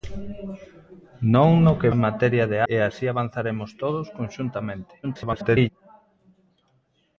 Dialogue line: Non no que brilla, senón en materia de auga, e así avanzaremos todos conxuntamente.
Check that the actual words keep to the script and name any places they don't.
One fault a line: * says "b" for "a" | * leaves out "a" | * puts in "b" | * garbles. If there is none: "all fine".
* leaves out "brilla senón"
* leaves out "auga"
* garbles